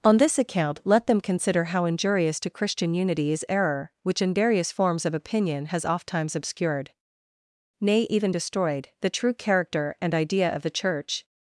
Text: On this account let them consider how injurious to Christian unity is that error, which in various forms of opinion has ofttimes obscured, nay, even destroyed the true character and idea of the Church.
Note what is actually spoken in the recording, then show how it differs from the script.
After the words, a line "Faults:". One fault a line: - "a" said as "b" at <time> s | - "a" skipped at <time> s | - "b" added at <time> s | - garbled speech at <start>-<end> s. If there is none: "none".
On this account let them consider how injurious to Christian unity is error, which in various forms of opinion has ofttimes obscured, nay, even destroyed the true character and idea of the Church.
Faults:
- "that" skipped at 3.5 s